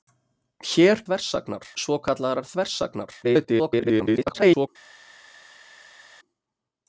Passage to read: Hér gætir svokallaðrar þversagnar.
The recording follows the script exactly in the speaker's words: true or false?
false